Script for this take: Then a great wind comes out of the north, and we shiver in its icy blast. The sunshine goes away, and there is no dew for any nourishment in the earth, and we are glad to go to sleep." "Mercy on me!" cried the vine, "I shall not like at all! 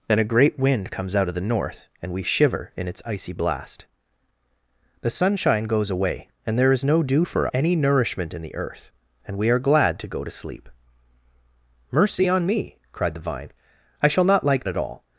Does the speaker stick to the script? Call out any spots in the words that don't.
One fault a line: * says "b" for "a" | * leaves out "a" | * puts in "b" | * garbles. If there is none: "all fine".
all fine